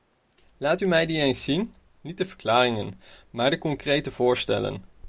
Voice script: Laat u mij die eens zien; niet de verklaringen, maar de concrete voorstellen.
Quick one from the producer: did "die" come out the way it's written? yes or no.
yes